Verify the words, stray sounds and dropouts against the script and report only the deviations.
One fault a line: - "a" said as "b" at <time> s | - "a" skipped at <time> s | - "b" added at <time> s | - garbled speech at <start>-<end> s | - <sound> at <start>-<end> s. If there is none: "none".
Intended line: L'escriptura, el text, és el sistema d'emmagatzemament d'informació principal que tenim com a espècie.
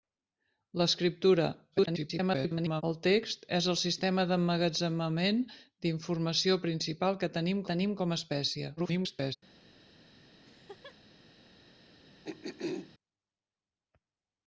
- garbled speech at 1.7-2.8 s
- "tenim" added at 7.7 s
- garbled speech at 8.8-9.4 s
- laugh at 10.4-11.0 s
- throat clearing at 12.2-12.9 s